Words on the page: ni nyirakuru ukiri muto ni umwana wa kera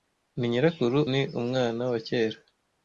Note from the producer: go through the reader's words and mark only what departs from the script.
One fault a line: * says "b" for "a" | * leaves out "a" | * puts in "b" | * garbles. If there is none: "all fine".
* leaves out "ukiri muto"